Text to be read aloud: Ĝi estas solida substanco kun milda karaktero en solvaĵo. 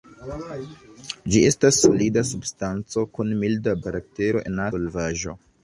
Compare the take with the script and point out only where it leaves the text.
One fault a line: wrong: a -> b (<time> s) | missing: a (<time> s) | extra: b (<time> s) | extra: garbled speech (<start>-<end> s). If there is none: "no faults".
no faults